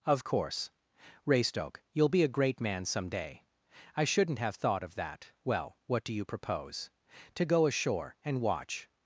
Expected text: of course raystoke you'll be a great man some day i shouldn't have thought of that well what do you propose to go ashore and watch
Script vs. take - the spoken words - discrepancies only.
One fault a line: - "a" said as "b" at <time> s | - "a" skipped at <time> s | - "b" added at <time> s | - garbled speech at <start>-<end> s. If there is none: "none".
none